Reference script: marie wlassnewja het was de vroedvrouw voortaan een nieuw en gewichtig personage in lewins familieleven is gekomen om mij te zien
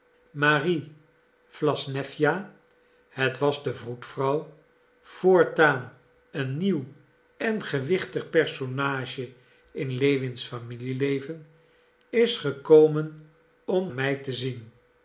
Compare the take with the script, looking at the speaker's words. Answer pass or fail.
pass